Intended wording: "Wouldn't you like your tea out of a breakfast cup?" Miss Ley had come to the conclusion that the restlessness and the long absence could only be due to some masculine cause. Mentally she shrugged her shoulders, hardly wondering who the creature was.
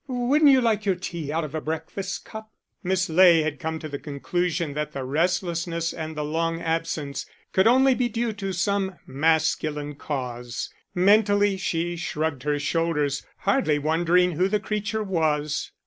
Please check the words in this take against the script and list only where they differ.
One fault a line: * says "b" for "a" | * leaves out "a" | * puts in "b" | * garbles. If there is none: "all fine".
all fine